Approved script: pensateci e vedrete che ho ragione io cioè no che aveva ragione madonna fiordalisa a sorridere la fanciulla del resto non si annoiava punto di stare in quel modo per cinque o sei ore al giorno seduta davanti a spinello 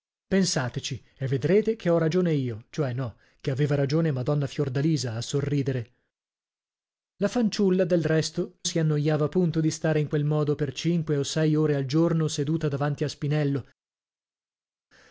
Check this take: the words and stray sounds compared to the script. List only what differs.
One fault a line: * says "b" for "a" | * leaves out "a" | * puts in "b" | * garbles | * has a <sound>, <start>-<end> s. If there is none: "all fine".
* leaves out "non"